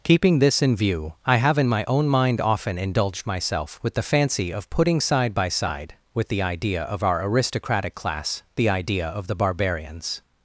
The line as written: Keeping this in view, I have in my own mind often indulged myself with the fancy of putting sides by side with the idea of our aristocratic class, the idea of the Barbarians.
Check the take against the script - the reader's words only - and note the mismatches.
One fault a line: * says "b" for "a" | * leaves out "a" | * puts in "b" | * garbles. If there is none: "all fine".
* says "side" for "sides"